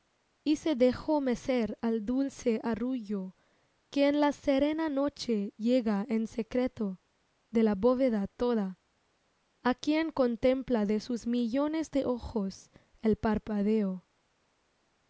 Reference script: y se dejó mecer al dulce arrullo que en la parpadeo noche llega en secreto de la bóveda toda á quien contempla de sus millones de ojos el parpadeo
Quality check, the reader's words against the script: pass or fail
fail